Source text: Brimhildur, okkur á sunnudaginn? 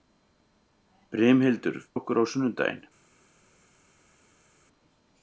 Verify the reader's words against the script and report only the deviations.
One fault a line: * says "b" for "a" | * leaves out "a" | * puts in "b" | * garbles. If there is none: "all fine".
all fine